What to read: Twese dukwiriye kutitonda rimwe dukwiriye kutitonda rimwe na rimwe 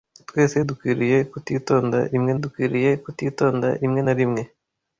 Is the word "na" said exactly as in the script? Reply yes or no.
yes